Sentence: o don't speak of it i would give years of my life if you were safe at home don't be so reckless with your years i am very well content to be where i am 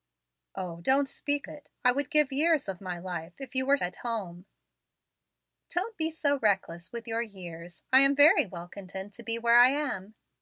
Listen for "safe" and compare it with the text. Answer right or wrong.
wrong